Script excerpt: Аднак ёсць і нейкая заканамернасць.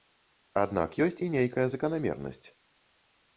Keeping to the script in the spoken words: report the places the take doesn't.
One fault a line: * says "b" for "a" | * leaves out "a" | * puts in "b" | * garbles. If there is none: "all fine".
all fine